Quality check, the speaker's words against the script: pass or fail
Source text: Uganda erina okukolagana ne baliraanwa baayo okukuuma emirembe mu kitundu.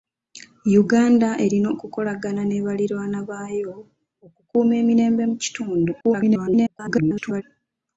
fail